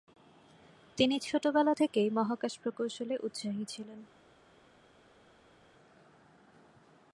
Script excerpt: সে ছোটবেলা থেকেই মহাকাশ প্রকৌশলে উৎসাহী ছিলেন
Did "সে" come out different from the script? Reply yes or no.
yes